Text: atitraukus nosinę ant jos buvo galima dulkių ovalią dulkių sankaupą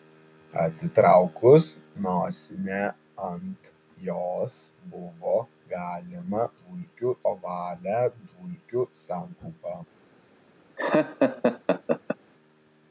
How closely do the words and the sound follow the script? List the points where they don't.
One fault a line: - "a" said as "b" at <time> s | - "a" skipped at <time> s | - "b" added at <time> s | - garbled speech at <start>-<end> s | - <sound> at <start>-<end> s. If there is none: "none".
- laugh at 10.8-12.2 s